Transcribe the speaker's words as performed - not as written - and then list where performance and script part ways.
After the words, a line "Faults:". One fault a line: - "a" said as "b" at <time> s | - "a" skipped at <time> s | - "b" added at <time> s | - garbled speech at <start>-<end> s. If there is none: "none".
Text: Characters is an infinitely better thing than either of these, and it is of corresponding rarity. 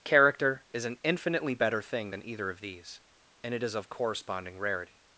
Character is an infinitely better thing than either of these, and it is of corresponding rarity.
Faults:
- "Characters" said as "Character" at 0.0 s